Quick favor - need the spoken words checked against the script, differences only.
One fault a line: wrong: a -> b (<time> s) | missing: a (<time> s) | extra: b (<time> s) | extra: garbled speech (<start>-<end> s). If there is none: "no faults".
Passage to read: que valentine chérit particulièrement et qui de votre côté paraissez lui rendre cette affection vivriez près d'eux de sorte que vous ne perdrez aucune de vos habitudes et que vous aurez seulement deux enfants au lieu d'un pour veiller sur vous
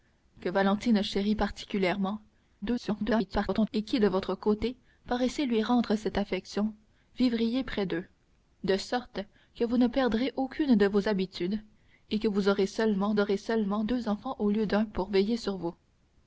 extra: garbled speech (2.6-3.7 s)
extra: aurez seulement (13.2 s)